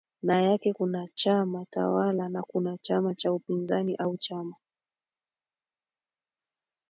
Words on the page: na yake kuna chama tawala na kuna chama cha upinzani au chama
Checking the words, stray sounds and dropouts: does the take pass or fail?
pass